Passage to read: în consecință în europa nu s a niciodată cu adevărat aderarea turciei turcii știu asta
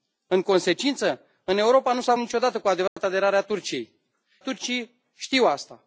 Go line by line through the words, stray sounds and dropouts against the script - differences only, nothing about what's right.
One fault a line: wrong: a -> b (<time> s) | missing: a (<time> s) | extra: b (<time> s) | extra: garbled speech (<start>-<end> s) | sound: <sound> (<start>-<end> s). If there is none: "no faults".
sound: dropout (2.9-3.0 s)